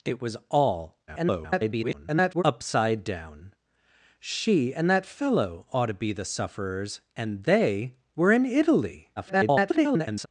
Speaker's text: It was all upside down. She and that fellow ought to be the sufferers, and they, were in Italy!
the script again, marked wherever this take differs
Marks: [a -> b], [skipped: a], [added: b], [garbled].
It was all [garbled] upside down. She and that fellow ought to be the sufferers, and they, were in Italy! [garbled]